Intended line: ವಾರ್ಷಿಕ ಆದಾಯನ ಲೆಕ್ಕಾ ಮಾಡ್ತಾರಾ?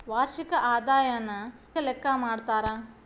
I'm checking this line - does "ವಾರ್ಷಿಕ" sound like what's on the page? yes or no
yes